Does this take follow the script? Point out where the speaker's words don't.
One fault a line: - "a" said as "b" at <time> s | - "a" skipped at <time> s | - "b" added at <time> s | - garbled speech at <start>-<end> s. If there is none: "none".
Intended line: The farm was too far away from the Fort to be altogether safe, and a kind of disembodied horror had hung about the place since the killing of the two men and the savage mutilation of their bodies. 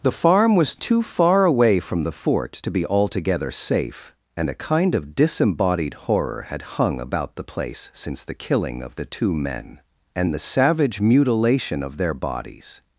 none